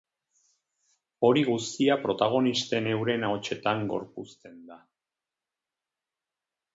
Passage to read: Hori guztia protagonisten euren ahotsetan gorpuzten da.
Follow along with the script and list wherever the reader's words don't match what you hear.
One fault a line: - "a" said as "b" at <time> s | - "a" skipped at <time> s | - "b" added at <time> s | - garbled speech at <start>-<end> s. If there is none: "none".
none